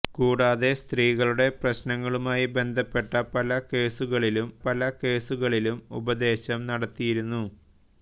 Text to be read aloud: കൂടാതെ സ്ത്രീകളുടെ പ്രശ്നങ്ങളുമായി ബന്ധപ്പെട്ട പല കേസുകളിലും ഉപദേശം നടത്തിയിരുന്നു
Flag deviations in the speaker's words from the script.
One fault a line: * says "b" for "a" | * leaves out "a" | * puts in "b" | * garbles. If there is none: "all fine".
* puts in "പല കേസുകളിലും"